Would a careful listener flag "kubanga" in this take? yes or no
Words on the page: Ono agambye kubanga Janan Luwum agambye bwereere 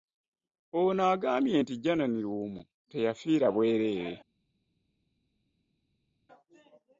yes